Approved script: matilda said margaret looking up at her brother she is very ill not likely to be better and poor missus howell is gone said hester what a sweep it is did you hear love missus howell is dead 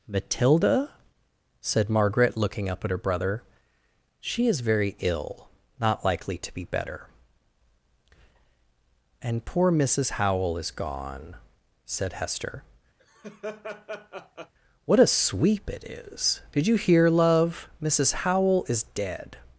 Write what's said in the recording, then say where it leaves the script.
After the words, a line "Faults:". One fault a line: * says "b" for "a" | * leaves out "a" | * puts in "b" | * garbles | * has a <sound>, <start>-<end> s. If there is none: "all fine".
matilda said margaret looking up at her brother she is very ill not likely to be better and poor missus howell is gone said hester what a sweep it is did you hear love missus howell is dead
Faults:
* has a laugh, 13.0-14.5 s